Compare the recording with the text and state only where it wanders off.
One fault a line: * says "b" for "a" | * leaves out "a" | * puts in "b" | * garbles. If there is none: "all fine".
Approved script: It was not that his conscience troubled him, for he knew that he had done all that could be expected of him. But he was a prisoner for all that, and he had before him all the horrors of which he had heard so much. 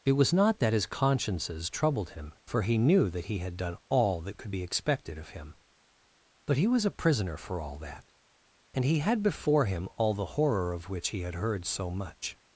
* says "consciences" for "conscience"
* says "horror" for "horrors"